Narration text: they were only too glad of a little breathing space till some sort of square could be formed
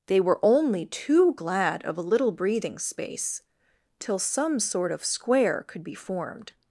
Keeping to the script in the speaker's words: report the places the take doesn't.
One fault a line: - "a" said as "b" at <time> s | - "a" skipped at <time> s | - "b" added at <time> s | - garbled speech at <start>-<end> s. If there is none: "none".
none